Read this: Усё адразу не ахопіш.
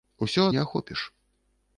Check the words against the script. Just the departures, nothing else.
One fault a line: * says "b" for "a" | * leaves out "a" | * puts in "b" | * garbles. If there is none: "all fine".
* leaves out "адразу"